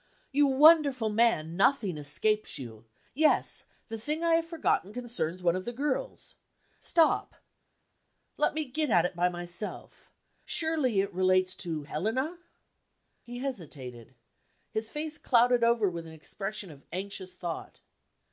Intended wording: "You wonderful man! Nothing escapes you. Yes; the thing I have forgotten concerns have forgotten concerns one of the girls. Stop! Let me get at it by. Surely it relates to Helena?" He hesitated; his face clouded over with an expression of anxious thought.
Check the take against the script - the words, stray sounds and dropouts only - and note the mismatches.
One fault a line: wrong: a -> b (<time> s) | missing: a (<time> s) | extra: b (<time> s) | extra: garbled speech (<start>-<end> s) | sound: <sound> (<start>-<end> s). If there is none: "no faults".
missing: have forgotten concerns (5.4 s)
extra: myself (9.3 s)